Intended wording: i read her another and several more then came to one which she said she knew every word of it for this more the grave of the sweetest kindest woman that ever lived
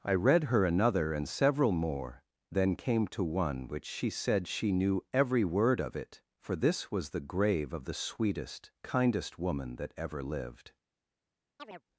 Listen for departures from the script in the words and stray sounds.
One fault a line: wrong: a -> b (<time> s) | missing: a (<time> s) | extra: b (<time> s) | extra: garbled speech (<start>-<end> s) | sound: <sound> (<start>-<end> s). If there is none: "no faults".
wrong: more -> was (6.9 s)
sound: chirp (11.6-11.8 s)